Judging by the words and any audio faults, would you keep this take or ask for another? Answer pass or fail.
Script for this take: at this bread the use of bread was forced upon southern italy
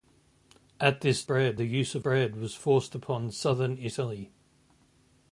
pass